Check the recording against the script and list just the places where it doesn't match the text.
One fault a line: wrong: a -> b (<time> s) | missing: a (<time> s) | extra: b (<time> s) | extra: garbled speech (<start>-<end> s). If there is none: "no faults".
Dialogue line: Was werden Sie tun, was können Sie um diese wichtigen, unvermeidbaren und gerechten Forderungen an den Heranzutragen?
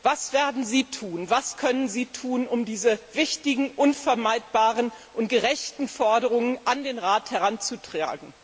extra: tun (2.1 s)
extra: Rat (7.0 s)